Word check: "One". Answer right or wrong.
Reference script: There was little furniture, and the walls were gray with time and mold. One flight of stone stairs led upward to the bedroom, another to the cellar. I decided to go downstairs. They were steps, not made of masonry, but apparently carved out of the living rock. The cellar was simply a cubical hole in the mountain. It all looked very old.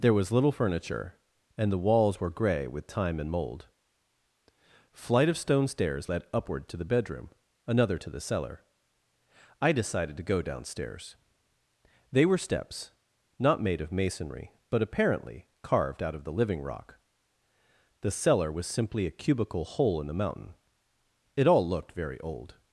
wrong